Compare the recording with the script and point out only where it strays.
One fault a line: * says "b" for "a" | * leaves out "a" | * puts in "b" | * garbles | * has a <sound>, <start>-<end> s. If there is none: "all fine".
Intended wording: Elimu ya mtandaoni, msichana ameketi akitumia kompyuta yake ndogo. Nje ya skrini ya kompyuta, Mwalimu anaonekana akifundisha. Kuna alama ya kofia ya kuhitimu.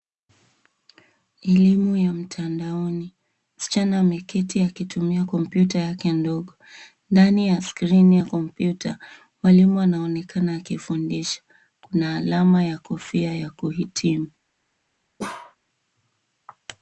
* says "Ndani" for "Nje"
* has a bark, 15.2-15.6 s